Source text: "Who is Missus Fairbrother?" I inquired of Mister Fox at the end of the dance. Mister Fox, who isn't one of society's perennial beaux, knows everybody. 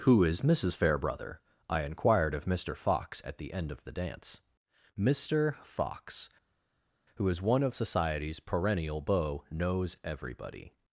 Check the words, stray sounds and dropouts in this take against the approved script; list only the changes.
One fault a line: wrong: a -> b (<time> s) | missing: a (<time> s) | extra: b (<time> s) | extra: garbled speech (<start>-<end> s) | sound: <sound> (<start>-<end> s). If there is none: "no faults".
wrong: isn't -> is (7.3 s)